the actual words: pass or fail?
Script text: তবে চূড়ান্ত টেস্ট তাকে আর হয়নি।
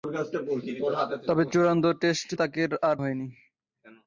pass